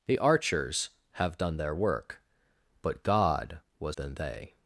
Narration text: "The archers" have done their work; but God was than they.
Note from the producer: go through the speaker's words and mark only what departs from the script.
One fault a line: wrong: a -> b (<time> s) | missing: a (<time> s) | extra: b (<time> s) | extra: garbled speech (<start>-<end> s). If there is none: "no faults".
no faults